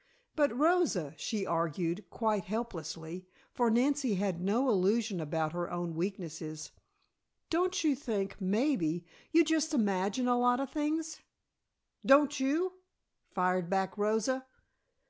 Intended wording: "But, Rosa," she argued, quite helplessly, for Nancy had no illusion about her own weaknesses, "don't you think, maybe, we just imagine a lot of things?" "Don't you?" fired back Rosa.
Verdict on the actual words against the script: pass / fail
fail